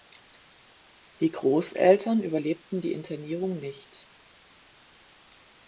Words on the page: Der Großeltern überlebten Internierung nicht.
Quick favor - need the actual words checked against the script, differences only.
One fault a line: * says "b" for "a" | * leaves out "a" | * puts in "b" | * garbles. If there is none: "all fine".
* says "Die" for "Der"
* puts in "die"